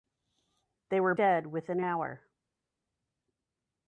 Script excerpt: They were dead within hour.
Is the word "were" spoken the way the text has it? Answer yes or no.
yes